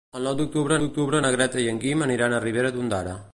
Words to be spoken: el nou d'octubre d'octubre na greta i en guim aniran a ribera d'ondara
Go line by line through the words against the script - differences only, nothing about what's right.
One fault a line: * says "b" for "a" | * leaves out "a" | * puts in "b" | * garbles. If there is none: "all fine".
all fine